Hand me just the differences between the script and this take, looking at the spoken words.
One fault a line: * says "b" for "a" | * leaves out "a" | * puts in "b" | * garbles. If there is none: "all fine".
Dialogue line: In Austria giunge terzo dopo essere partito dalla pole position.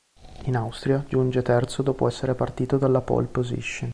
all fine